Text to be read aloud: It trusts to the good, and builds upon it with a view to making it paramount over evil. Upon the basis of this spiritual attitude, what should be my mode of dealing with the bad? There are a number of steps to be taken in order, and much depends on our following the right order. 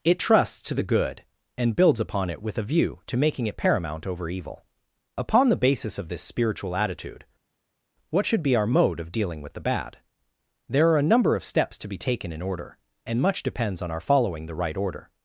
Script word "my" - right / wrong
wrong